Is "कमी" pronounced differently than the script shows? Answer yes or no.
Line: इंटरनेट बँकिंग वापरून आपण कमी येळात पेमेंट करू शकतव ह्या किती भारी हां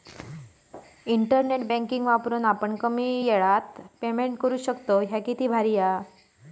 no